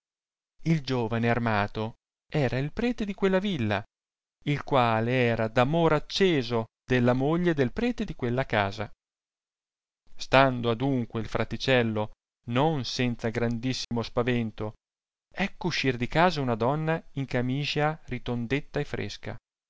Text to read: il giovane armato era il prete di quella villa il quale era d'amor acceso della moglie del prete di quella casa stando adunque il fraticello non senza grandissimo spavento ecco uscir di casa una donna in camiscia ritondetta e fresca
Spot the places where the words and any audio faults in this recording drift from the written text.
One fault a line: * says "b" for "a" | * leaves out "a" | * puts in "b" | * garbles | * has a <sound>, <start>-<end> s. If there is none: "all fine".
* has a dropout, 13.8-13.9 s